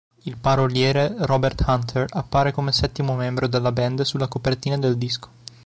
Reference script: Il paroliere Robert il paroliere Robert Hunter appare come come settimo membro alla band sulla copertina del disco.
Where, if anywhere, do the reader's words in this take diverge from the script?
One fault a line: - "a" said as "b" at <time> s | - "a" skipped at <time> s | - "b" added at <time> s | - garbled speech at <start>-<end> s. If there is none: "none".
- "il paroliere Robert" skipped at 1.6 s
- "come" skipped at 2.7 s
- "alla" said as "della" at 3.5 s